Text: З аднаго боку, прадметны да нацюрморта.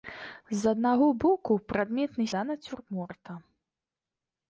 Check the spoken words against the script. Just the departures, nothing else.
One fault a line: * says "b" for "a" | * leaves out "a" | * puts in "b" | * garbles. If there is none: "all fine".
all fine